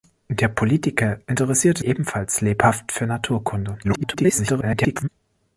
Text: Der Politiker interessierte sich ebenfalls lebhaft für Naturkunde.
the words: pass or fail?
fail